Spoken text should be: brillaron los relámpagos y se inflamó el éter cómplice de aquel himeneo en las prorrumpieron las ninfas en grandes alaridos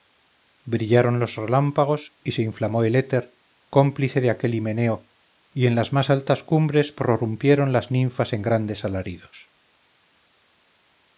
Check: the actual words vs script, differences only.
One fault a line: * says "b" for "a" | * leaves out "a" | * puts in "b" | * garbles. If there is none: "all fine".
* puts in "y"
* puts in "más altas cumbres"